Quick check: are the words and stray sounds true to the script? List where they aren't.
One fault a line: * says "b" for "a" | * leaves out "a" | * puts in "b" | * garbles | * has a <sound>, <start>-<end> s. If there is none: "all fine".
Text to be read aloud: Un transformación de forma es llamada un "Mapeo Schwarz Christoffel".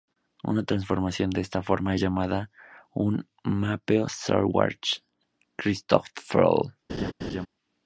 * says "Una" for "Un"
* puts in "esta"
* has a laugh, 6.9-7.5 s